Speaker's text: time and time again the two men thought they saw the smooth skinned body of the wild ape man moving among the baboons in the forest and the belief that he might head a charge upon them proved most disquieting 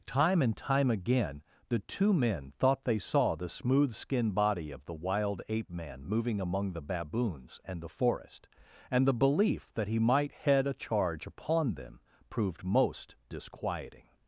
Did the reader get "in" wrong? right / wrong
wrong